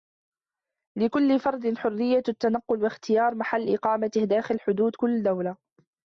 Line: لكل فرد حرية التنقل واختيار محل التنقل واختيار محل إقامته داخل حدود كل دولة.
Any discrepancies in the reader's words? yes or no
yes